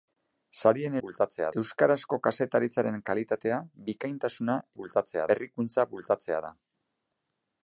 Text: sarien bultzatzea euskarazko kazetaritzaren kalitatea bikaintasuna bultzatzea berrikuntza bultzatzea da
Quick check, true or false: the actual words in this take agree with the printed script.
true